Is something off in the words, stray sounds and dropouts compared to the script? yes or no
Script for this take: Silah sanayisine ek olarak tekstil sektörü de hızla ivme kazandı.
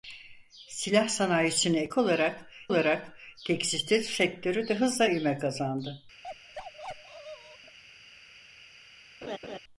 yes